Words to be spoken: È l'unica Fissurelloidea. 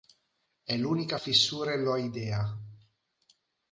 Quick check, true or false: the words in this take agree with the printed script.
true